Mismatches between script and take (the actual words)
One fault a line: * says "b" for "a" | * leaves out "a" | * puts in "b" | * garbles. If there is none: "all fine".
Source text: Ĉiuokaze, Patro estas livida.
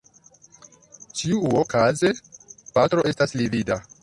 all fine